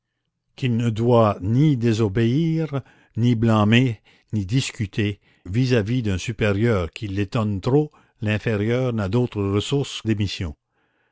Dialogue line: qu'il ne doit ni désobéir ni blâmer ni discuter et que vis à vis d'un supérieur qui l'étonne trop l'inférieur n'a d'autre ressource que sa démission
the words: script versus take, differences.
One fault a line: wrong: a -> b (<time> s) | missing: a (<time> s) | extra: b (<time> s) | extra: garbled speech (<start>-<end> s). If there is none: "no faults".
missing: et que (5.2 s)
missing: que sa (10.0 s)